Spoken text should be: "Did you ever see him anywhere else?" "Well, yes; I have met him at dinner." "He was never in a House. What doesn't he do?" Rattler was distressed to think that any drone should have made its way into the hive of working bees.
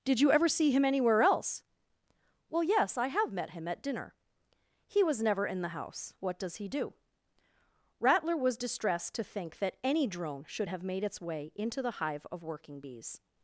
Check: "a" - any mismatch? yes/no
yes